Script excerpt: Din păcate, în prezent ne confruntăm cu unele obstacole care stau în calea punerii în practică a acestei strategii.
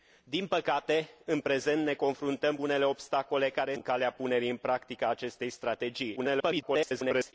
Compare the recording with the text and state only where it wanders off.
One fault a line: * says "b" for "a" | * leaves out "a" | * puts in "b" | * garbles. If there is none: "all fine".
* leaves out "cu"
* leaves out "stau"
* garbles